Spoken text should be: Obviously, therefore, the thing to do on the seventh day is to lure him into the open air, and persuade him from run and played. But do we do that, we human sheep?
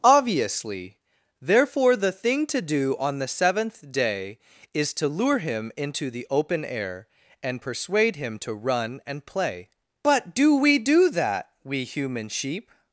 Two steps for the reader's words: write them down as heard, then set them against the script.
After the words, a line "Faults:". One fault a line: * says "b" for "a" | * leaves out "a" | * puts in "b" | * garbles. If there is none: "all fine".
Obviously, therefore, the thing to do on the seventh day is to lure him into the open air, and persuade him to run and play. But do we do that, we human sheep?
Faults:
* says "to" for "from"
* says "play" for "played"